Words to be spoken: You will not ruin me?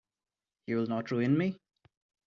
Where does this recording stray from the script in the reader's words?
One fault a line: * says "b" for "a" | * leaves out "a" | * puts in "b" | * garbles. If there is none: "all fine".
all fine